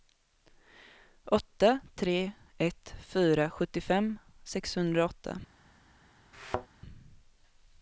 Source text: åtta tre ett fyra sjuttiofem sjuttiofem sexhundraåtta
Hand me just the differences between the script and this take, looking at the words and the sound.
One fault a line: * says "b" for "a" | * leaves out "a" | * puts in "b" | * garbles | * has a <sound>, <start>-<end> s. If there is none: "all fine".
* leaves out "sjuttiofem"
* has a thud, 6.3-6.7 s